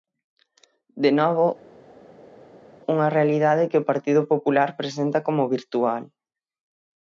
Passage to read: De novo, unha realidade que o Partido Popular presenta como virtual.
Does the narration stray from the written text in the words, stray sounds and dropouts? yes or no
no